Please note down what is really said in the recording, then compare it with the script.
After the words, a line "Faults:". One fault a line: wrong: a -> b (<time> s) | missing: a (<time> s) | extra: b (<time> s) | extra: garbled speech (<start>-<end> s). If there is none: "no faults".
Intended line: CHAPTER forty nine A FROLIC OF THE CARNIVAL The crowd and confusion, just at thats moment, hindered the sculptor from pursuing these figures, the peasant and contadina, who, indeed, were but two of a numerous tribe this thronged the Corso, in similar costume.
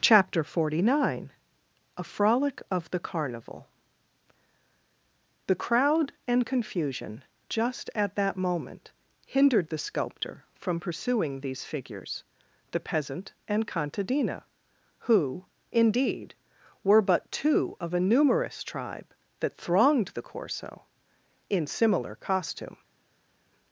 CHAPTER forty nine A FROLIC OF THE CARNIVAL The crowd and confusion, just at that moment, hindered the sculptor from pursuing these figures, the peasant and contadina, who, indeed, were but two of a numerous tribe that thronged the Corso, in similar costume.
Faults:
wrong: thats -> that (8.2 s)
wrong: this -> that (19.4 s)